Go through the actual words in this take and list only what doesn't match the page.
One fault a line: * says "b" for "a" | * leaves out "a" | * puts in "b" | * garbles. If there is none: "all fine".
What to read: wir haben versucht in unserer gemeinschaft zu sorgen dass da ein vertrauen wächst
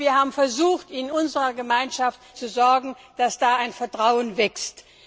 all fine